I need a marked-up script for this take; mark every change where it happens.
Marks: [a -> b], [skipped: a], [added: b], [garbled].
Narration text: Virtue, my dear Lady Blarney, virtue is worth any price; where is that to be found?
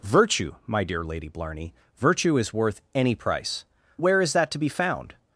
Virtue, my dear Lady Blarney, virtue is worth any price; where is that to be found?